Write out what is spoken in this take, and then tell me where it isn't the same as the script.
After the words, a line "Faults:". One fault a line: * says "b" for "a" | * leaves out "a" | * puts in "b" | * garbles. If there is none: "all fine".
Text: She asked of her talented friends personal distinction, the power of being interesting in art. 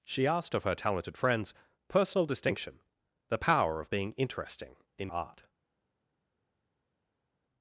She asked of her talented friends personal distinction, the power of being interesting in art.
Faults:
all fine